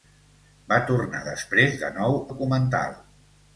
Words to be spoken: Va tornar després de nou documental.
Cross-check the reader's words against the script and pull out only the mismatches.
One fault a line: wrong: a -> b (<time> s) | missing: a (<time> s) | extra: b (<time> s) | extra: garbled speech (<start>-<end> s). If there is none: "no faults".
no faults